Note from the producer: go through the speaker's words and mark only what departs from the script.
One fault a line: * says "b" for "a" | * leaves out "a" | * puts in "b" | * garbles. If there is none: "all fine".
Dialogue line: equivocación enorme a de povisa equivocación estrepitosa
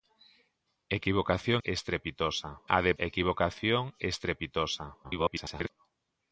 * says "estrepitosa" for "enorme"
* leaves out "povisa"
* garbles